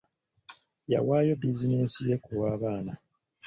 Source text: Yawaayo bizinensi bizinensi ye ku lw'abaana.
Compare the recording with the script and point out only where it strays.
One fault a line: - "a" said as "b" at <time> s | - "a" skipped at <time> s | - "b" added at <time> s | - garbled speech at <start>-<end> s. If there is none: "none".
- "bizinensi" skipped at 2.0 s